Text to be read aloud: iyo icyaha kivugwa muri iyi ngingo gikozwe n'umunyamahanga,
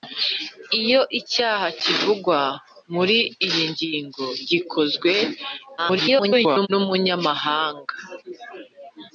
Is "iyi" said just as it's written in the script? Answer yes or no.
yes